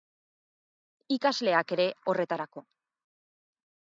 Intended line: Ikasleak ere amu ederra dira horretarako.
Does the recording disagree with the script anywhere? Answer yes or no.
yes